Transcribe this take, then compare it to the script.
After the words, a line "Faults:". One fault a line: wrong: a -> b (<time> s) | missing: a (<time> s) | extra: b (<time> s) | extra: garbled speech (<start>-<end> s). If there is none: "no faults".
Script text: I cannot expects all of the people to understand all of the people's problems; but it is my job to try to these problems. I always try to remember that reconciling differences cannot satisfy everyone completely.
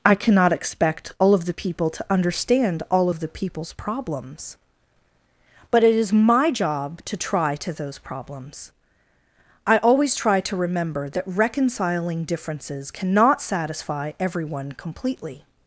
I cannot expect all of the people to understand all of the people's problems; but it is my job to try to those problems. I always try to remember that reconciling differences cannot satisfy everyone completely.
Faults:
wrong: expects -> expect (0.5 s)
wrong: these -> those (7.7 s)